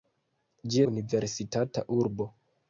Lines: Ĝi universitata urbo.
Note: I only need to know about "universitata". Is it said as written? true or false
true